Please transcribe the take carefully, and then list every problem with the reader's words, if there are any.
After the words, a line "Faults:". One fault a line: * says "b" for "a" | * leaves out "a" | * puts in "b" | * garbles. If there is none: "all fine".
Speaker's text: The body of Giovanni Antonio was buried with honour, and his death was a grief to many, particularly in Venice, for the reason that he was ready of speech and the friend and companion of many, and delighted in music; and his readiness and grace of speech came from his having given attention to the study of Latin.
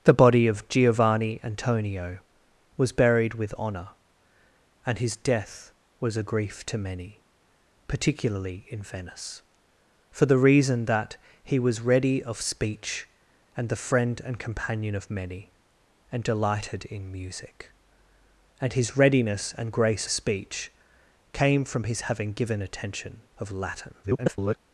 The body of Giovanni Antonio was buried with honour, and his death was a grief to many, particularly in Venice, for the reason that he was ready of speech and the friend and companion of many, and delighted in music; and his readiness and grace speech came from his having given attention of Latin. [garbled]
Faults:
* leaves out "of"
* leaves out "to the study"
* garbles